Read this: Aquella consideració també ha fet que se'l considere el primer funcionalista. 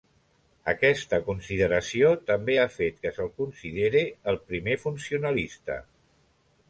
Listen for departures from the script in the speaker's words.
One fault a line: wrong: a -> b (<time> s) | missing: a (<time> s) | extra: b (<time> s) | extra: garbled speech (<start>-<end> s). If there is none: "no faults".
wrong: Aquella -> Aquesta (0.7 s)